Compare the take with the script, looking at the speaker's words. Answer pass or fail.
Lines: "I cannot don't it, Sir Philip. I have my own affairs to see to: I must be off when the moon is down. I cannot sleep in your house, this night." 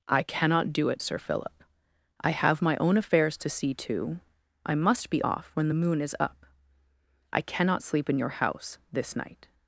fail